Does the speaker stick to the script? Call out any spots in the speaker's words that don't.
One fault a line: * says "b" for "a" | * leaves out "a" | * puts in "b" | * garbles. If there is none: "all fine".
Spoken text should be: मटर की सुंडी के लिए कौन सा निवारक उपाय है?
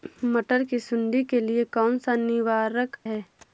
* leaves out "उपाय"